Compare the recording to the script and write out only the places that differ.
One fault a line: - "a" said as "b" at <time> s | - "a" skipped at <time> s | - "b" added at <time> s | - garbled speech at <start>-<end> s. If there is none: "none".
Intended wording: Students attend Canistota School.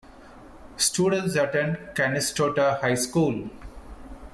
- "High" added at 2.8 s